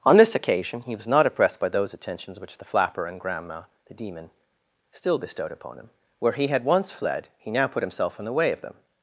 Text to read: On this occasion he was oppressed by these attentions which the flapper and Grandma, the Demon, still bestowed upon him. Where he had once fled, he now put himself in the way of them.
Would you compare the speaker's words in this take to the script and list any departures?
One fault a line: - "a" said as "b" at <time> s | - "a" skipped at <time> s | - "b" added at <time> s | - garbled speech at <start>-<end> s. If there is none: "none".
- "not" added at 1.1 s
- "these" said as "those" at 1.7 s